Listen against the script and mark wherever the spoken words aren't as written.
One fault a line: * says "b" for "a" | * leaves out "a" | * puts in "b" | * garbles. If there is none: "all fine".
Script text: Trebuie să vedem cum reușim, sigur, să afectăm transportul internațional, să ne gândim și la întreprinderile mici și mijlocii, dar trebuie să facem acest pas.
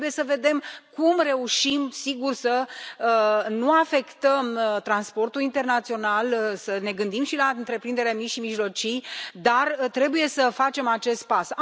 * puts in "nu"